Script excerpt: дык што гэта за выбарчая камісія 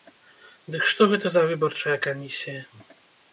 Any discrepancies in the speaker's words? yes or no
no